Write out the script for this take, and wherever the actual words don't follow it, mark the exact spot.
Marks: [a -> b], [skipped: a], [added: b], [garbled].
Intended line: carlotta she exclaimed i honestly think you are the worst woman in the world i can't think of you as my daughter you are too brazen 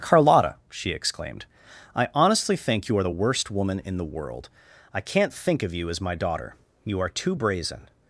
carlotta she exclaimed i honestly think you are the worst woman in the world i can't think of you as my daughter you are too brazen